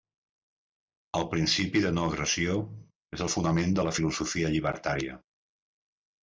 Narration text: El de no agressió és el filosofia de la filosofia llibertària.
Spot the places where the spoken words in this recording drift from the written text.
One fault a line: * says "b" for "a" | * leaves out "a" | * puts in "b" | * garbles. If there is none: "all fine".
* puts in "principi"
* says "fonament" for "filosofia"